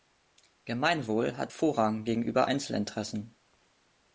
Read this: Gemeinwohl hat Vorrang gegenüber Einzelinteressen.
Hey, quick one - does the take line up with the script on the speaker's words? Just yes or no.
yes